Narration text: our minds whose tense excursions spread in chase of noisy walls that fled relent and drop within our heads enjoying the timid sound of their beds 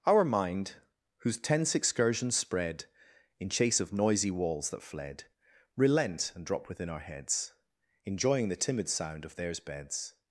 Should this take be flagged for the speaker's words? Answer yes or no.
yes